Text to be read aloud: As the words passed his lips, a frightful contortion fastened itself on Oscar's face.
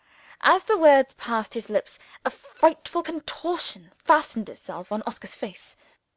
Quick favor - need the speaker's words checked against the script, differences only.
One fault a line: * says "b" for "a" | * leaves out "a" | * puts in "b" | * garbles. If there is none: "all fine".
all fine